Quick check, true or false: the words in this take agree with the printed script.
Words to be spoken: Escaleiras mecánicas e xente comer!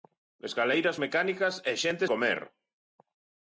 true